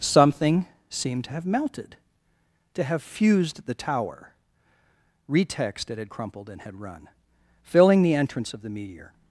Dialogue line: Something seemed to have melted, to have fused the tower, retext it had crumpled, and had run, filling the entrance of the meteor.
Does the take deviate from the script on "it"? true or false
false